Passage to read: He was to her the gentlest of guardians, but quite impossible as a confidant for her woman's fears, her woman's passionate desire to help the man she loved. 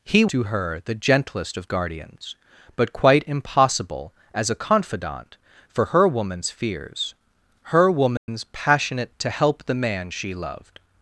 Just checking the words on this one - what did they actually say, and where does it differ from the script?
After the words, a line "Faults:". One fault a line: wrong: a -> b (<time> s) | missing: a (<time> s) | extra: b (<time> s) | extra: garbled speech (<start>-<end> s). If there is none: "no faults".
He to her the gentlest of guardians, but quite impossible as a confidant for her woman's fears, her woman's passionate to help the man she loved.
Faults:
missing: was (0.2 s)
missing: desire (9.1 s)